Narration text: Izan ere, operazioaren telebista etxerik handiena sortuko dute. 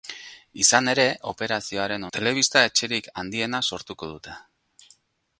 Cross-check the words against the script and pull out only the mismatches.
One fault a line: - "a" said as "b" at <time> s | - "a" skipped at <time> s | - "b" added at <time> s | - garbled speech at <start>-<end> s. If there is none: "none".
none